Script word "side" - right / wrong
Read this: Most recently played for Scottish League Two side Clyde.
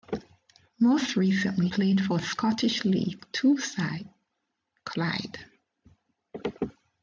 right